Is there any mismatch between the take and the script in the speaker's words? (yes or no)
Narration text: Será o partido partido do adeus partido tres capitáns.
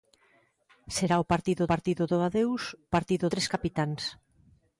no